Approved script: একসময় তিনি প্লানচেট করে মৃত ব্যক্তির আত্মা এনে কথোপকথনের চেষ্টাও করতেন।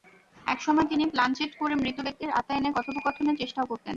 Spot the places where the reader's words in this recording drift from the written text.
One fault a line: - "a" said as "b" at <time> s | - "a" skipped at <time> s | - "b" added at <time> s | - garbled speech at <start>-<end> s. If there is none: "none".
none